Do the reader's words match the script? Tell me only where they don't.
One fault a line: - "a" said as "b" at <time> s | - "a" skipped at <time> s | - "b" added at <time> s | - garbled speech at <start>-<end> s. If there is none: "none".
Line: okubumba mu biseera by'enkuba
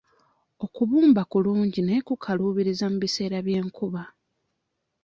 - "kulungi naye kukaluubiriza" added at 1.3 s